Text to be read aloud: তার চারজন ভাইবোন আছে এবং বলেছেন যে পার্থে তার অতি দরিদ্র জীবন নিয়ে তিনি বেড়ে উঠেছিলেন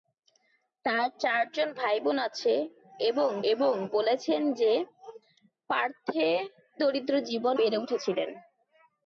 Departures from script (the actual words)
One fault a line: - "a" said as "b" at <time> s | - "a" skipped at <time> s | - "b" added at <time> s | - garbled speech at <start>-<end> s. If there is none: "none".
- "এবং" added at 3.5 s
- "তার অতি" skipped at 6.3 s
- "নিয়ে তিনি" skipped at 7.5 s